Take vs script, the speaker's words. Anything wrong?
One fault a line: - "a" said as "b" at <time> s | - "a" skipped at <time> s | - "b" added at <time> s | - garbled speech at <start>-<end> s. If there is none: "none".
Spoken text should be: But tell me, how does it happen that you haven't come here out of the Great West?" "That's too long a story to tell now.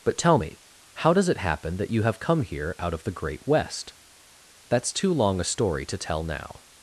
- "haven't" said as "have" at 2.0 s